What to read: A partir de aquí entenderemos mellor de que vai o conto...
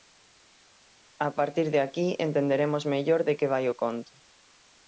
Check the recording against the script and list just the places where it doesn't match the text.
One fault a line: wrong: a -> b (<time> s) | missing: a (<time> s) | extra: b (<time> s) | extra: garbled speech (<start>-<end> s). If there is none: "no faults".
no faults